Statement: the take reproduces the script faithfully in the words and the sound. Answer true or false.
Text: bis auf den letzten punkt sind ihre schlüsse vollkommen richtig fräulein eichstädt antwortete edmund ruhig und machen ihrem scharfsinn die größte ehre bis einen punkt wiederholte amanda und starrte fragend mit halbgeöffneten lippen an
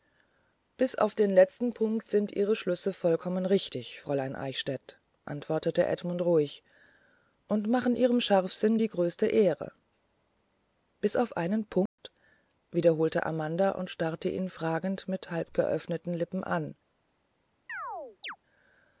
false